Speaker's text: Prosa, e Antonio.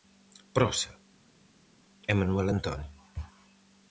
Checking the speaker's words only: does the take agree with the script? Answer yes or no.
no